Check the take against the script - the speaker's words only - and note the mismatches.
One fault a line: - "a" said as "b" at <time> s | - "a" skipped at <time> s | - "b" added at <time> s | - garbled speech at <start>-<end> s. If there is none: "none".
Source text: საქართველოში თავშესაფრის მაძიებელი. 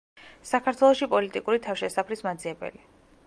- "პოლიტიკური" added at 1.1 s